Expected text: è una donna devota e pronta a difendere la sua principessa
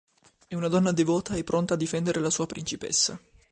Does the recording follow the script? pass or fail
pass